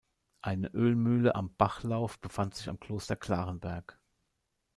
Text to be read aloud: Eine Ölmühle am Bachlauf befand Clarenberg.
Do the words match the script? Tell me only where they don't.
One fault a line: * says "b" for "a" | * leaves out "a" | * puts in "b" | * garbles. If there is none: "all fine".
* puts in "sich am Kloster"